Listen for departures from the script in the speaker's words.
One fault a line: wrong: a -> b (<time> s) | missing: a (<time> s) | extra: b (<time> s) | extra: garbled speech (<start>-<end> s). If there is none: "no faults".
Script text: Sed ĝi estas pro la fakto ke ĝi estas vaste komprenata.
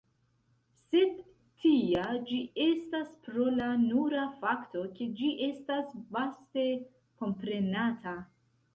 extra: tia (1.6 s)
extra: nura (3.8 s)